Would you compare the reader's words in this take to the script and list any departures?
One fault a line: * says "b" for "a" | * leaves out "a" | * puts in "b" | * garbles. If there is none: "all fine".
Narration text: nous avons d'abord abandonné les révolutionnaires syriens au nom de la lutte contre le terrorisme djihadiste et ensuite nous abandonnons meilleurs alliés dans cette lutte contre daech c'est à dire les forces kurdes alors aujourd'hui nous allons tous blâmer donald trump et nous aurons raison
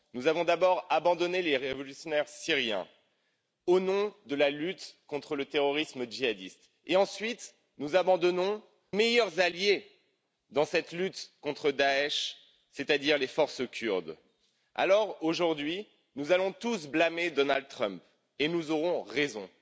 all fine